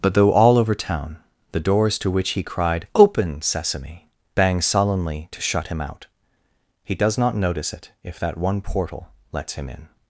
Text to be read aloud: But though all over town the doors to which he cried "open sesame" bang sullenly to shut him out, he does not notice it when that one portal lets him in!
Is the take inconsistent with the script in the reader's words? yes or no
yes